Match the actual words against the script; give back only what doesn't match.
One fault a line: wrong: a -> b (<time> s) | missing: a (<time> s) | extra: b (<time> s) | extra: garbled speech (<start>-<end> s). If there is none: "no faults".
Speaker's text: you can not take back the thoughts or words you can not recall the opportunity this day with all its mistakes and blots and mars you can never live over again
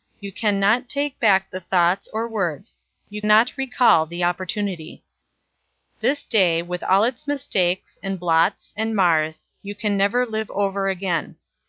missing: can (3.2 s)